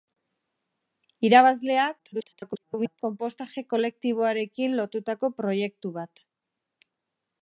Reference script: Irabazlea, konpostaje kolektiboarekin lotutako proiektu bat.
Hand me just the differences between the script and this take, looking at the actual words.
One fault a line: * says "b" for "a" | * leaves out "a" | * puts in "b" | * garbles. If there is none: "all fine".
* garbles